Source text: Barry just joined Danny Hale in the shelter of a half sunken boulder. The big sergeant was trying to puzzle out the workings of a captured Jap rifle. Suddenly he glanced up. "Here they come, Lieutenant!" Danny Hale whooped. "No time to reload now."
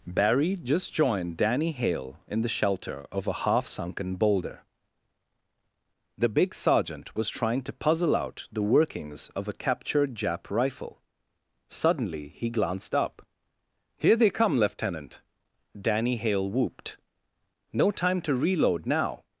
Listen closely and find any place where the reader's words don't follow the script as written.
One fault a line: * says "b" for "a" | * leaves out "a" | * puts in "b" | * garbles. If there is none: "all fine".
all fine